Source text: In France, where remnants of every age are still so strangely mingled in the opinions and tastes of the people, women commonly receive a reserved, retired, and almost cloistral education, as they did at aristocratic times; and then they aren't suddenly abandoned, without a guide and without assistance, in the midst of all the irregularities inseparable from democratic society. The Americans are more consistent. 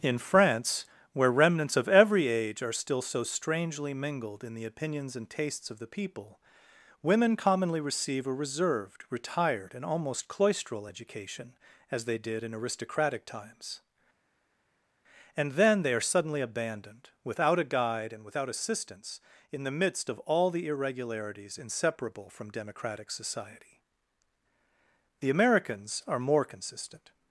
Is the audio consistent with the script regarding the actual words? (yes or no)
no